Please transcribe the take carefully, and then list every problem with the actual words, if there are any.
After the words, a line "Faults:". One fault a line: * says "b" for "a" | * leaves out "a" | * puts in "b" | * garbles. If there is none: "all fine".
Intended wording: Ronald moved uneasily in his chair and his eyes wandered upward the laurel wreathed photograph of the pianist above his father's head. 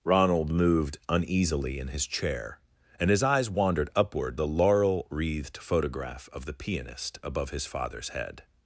Ronald moved uneasily in his chair and his eyes wandered upward the laurel wreathed photograph of the pianist above his father's head.
Faults:
all fine